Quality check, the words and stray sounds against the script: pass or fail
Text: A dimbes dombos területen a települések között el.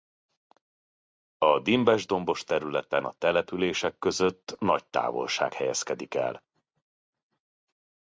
fail